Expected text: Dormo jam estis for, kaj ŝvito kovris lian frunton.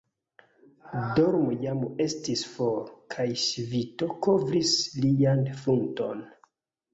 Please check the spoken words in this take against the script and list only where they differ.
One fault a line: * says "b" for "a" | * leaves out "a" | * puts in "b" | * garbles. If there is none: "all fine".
all fine